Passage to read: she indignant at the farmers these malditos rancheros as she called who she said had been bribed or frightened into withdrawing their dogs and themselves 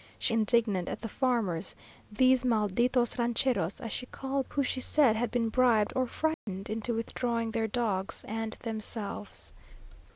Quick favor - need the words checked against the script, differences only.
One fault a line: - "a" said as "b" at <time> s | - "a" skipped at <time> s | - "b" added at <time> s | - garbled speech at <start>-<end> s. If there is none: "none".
none